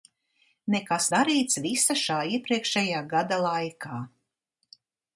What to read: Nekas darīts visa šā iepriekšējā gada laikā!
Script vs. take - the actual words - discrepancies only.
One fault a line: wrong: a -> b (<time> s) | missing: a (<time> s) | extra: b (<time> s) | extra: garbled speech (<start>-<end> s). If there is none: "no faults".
no faults